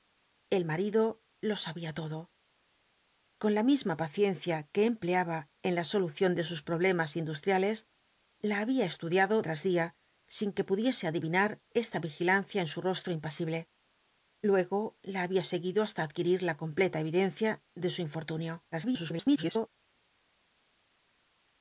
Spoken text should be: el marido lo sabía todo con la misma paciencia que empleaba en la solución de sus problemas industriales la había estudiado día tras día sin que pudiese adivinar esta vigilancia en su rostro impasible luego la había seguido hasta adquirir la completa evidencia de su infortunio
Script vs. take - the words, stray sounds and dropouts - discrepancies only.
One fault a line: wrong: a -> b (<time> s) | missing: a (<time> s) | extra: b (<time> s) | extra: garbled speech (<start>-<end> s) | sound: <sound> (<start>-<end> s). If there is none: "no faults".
missing: día (9.4 s)
extra: garbled speech (18.7-19.7 s)